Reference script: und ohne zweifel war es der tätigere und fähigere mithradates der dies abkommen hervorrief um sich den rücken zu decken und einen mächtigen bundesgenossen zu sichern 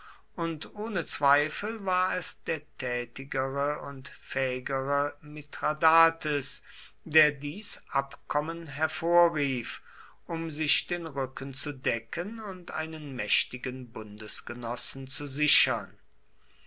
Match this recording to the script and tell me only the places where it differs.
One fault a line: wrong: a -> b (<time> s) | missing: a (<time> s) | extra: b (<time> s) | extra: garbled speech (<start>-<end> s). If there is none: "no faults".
no faults